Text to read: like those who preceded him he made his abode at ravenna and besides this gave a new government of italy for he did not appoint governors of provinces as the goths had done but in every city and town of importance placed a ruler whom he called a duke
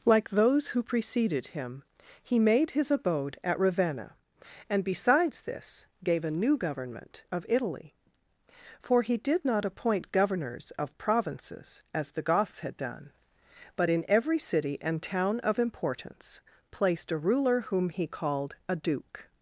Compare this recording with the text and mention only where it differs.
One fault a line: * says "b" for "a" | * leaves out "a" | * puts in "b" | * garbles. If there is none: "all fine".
all fine